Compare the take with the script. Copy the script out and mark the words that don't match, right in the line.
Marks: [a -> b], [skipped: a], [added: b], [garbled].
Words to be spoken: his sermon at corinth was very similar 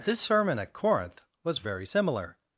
[his -> this] sermon at corinth was very similar